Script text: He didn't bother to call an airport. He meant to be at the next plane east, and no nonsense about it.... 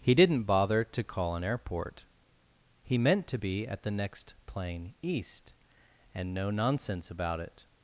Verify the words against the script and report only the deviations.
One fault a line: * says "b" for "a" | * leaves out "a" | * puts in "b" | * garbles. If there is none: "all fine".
all fine